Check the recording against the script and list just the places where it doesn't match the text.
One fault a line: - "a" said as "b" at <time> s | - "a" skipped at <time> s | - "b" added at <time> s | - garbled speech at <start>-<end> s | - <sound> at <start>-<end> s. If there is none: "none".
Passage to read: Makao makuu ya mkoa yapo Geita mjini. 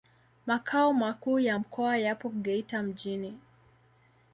none